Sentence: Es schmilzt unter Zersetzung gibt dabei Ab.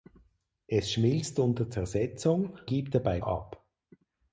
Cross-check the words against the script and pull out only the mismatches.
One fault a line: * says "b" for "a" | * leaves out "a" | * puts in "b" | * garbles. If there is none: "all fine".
all fine